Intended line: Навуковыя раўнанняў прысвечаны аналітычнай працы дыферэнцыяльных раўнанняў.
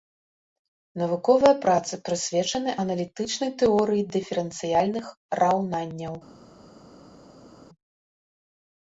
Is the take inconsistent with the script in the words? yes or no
yes